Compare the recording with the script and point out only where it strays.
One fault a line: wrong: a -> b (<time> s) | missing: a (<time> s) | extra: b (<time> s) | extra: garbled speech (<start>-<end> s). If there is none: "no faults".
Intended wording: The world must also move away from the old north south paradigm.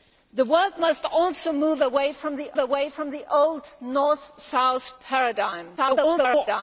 extra: away from the (2.6 s)
extra: garbled speech (5.8-6.6 s)